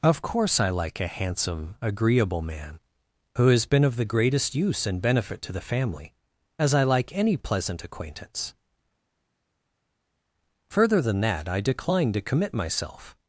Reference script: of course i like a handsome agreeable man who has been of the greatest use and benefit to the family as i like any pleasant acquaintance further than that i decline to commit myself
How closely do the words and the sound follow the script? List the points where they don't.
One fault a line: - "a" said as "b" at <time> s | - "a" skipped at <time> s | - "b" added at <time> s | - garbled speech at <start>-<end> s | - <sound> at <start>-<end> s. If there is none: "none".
none